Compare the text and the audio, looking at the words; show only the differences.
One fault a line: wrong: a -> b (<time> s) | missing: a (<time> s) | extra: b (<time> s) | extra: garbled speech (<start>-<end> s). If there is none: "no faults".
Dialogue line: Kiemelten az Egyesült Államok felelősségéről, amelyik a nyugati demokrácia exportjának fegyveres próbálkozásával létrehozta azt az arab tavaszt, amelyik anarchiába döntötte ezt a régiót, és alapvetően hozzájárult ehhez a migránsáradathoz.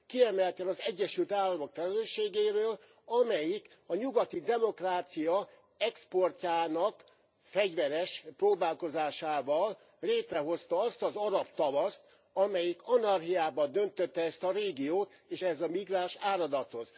missing: alapvetően hozzájárult (15.4 s)